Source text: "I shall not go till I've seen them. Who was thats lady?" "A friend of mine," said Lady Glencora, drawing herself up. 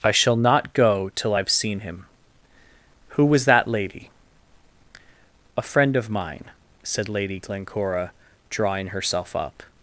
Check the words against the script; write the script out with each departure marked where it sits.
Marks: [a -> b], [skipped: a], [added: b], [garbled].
"I shall not go till I've seen [them. -> him] Who was [thats -> that] lady?" "A friend of mine," said Lady Glencora, drawing herself up.